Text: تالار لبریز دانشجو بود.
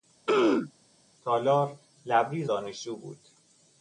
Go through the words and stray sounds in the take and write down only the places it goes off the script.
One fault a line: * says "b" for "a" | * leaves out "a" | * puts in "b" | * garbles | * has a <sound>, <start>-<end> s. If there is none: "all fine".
* has a throat clearing, 0.3-0.7 s